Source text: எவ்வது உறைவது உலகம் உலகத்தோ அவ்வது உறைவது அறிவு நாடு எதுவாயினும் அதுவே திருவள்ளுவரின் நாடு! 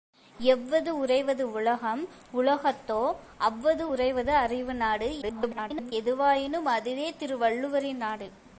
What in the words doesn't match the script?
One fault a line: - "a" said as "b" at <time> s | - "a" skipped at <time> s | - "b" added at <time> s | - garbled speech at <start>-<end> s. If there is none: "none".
- garbled speech at 5.2-5.9 s